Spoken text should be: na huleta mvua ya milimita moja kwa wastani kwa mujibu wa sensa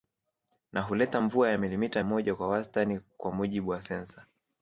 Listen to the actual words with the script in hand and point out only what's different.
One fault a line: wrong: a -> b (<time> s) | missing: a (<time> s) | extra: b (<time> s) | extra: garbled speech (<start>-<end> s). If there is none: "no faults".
no faults